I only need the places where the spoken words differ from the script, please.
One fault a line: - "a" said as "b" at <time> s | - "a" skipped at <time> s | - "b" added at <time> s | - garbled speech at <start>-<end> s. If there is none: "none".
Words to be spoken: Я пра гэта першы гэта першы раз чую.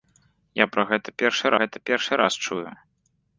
none